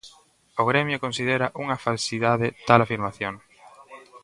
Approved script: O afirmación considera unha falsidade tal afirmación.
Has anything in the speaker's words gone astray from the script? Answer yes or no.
yes